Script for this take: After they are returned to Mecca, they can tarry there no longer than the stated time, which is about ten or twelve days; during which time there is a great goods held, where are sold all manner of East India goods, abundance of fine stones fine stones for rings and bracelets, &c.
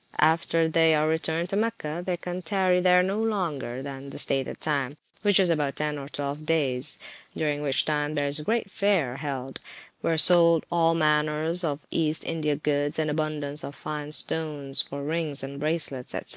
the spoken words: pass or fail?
fail